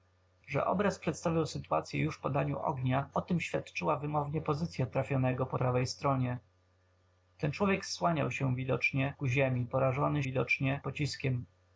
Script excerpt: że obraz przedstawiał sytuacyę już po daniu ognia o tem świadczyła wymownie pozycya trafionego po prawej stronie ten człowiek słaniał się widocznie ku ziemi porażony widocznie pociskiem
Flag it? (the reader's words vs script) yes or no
no